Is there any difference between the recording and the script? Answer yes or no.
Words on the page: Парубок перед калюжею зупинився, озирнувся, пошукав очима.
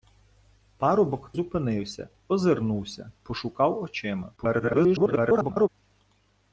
yes